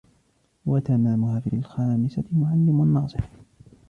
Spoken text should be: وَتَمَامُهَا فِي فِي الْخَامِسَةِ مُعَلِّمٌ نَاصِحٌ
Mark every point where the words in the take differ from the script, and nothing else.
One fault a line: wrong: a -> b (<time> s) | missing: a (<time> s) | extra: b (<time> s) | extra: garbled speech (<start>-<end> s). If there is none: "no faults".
no faults